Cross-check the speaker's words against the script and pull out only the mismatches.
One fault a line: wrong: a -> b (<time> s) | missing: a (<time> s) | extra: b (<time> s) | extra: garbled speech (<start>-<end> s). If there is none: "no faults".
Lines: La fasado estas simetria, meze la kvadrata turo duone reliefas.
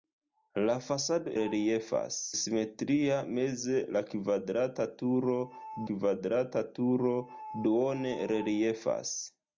wrong: estas -> reliefas (1.4 s)
extra: kvadrata turo (5.9 s)